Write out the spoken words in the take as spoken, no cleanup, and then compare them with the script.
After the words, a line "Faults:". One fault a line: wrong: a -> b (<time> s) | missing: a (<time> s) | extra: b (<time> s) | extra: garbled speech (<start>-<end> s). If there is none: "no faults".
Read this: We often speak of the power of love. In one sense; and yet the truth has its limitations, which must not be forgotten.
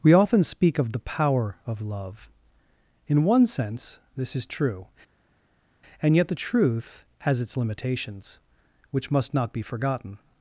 We often speak of the power of love. In one sense this is true; and yet the truth has its limitations, which must not be forgotten.
Faults:
extra: this is true (4.2 s)